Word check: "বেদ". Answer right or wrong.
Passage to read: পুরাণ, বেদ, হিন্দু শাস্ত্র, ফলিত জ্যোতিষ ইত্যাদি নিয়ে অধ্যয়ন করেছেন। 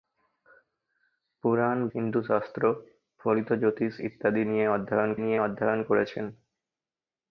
wrong